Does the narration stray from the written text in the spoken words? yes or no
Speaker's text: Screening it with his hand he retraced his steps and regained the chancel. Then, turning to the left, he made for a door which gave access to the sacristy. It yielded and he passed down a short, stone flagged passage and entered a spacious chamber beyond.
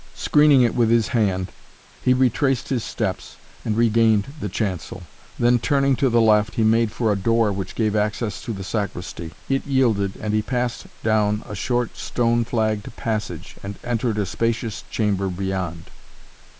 no